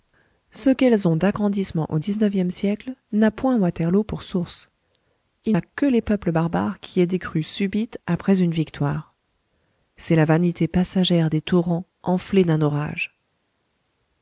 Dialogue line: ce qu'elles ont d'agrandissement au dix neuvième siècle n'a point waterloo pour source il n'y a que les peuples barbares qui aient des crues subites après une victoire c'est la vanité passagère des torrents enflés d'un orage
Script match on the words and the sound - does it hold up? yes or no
no